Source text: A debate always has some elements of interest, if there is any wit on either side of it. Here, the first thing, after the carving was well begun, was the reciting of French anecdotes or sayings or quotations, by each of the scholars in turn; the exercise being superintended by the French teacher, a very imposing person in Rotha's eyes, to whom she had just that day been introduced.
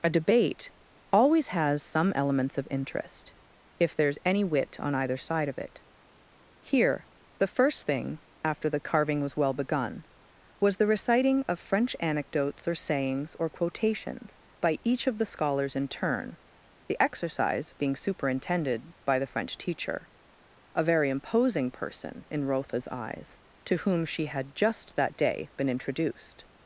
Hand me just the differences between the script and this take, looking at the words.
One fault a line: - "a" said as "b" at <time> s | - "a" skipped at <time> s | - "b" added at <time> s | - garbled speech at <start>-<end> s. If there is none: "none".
none